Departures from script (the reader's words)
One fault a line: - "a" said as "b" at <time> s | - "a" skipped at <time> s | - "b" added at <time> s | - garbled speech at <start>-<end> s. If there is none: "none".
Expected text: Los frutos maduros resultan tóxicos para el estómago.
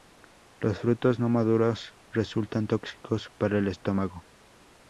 - "no" added at 1.2 s